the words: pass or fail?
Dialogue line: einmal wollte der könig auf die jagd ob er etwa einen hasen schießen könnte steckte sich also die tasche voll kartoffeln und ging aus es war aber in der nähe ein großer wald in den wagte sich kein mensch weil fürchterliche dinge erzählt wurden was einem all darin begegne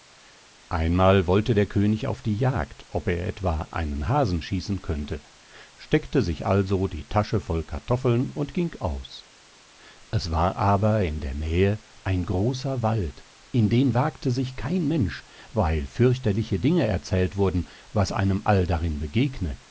pass